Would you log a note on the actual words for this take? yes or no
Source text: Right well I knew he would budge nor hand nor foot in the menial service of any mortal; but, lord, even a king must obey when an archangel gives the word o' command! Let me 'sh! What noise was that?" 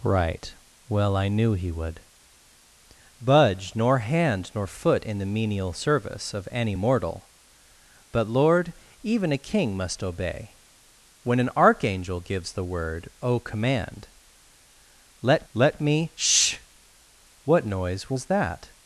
yes